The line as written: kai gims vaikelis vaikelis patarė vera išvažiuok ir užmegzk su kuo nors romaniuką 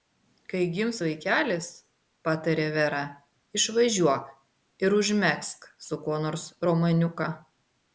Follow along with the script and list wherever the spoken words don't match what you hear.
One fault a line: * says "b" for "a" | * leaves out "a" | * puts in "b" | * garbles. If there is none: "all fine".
* leaves out "vaikelis"